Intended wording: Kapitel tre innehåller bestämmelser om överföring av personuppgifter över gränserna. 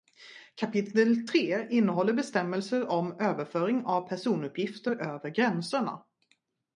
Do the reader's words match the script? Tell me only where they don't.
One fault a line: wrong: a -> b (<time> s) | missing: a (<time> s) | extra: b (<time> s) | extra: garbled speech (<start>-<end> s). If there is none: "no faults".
no faults